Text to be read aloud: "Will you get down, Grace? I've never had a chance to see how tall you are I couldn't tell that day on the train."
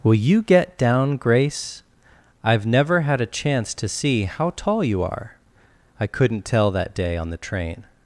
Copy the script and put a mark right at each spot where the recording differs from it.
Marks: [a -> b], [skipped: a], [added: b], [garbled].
"Will you get down, Grace? I've never had a chance to see how tall you are I couldn't tell that day on the train."